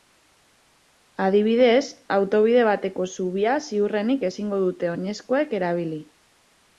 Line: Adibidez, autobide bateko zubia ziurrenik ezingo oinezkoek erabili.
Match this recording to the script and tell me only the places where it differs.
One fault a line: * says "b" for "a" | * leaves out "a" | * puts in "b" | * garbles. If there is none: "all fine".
* puts in "dute"